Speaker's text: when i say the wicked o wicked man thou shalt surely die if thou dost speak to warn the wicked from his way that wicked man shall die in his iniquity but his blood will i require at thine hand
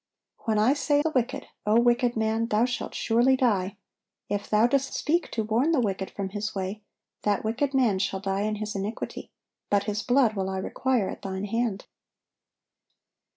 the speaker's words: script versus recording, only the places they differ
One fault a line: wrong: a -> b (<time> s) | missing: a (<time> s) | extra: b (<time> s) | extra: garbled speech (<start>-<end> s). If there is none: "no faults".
no faults